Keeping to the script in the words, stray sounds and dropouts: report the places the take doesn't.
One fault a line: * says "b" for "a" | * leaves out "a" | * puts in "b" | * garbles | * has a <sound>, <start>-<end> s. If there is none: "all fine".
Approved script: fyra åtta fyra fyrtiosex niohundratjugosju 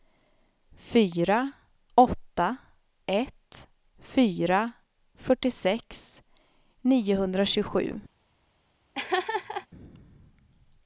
* puts in "ett"
* has a laugh, 8.9-9.7 s